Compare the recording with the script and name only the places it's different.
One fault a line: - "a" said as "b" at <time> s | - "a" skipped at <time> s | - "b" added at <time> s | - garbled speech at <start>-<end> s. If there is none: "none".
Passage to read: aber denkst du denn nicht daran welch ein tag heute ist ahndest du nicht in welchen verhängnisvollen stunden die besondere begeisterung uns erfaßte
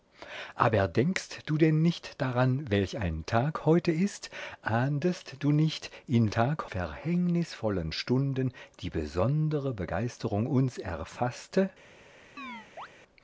- "welchen" said as "tag" at 6.3 s